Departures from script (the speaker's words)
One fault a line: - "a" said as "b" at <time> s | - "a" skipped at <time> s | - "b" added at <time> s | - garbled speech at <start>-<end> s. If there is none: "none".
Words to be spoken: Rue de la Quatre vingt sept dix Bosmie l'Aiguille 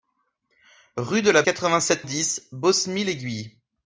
none